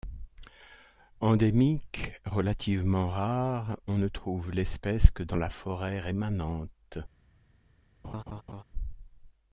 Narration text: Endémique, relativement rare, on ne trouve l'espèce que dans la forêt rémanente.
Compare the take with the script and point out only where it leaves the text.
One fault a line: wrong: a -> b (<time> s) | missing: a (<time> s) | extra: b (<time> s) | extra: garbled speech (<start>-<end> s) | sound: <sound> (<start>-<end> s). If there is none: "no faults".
sound: laugh (8.0-8.6 s)